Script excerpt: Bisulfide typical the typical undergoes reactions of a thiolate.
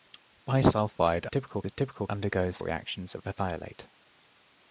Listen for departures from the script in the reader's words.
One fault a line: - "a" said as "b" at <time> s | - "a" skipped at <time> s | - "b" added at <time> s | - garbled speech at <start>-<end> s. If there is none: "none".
none